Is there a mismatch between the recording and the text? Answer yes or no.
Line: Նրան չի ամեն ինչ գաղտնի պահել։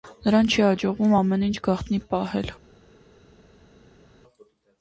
yes